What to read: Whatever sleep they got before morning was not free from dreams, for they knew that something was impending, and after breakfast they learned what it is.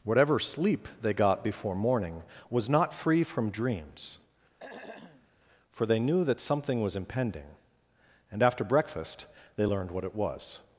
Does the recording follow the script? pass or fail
fail